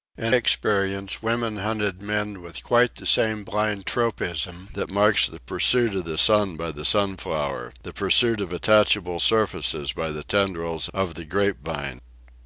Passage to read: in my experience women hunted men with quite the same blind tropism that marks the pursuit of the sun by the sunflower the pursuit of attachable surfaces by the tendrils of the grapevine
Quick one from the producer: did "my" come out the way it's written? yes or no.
no